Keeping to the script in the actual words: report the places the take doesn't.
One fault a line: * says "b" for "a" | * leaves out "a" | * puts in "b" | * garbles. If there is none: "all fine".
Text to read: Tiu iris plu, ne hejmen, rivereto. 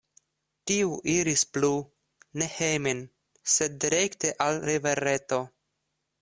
* puts in "sed direkte al"